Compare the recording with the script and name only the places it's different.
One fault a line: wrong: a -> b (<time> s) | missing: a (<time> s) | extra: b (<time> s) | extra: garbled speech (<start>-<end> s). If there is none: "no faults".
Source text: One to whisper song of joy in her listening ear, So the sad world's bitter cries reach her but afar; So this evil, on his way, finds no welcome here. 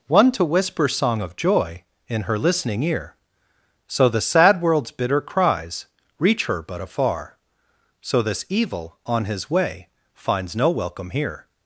no faults